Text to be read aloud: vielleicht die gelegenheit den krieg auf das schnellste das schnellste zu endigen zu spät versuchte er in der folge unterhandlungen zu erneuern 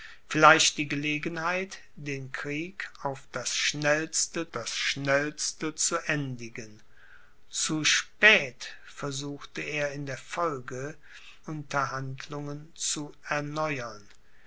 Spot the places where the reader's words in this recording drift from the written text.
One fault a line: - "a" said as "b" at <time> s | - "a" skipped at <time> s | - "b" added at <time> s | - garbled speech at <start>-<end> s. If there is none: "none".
none